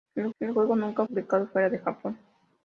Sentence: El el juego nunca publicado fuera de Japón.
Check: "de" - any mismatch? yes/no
no